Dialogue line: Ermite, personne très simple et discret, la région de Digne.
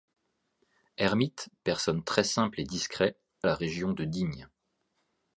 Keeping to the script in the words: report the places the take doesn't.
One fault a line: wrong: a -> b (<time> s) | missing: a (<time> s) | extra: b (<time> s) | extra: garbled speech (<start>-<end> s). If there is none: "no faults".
no faults